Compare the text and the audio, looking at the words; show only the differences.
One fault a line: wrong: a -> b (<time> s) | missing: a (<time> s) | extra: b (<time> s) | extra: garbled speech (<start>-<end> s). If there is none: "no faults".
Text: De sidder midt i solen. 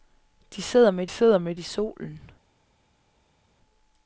extra: sidder midt (1.1 s)